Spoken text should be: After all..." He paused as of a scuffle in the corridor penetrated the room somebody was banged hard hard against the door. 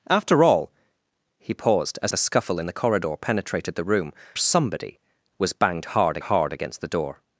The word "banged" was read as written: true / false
true